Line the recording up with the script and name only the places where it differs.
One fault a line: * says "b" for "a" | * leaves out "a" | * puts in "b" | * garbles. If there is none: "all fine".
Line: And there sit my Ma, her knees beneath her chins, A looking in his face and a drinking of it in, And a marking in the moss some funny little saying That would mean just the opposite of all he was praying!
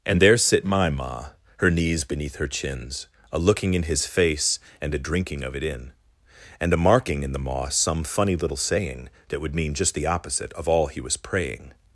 all fine